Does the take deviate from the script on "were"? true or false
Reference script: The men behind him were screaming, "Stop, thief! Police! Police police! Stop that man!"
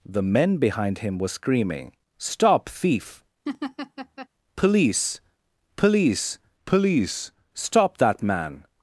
false